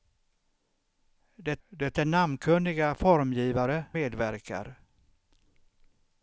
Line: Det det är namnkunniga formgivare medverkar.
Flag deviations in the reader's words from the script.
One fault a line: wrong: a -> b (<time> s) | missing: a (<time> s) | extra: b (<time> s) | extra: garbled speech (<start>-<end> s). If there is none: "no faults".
no faults